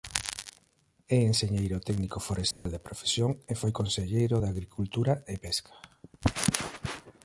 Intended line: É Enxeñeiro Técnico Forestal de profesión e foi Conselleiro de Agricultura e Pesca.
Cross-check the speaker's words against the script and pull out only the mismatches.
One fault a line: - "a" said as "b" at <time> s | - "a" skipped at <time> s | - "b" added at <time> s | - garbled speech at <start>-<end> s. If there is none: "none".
none